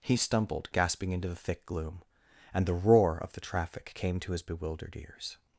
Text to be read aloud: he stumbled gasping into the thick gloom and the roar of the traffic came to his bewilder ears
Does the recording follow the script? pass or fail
fail